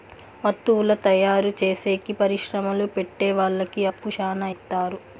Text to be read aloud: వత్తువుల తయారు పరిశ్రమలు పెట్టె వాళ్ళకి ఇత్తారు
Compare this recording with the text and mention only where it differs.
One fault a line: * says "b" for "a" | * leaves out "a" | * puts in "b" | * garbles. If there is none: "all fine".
* puts in "చేసేకి"
* puts in "అప్పు శ్యానా"